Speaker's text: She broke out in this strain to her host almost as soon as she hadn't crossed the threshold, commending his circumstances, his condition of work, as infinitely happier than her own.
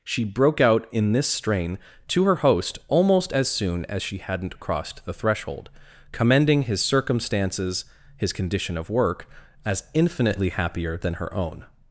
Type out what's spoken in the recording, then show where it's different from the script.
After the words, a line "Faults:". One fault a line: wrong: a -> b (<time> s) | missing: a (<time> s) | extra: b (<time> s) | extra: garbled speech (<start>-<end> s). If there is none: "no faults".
She broke out in this strain to her host almost as soon as she hadn't crossed the threshold, commending his circumstances, his condition of work, as infinitely happier than her own.
Faults:
no faults